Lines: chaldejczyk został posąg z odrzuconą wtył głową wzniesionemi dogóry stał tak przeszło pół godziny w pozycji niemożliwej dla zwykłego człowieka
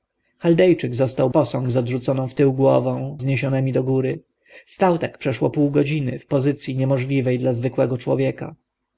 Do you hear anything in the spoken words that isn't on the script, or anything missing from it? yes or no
no